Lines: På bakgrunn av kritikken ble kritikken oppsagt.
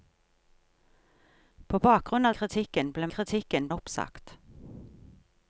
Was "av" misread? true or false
false